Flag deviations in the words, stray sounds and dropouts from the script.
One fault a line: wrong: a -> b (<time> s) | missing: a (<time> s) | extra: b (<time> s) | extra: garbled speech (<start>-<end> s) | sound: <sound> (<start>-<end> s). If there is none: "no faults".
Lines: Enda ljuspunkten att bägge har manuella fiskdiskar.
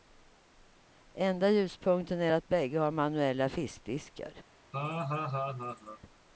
extra: är (2.2 s)
sound: laugh (4.7-6.0 s)